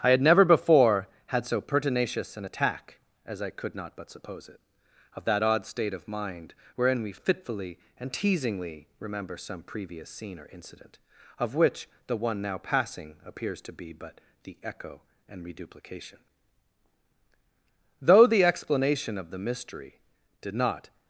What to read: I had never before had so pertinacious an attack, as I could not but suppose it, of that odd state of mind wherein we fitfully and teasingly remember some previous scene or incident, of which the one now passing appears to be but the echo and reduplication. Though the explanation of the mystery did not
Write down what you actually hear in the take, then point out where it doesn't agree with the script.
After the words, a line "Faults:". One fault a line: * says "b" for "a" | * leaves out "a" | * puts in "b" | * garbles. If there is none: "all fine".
I had never before had so pertinacious an attack, as I could not but suppose it, of that odd state of mind wherein we fitfully and teasingly remember some previous scene or incident, of which the one now passing appears to be but the echo and reduplication. Though the explanation of the mystery did not
Faults:
all fine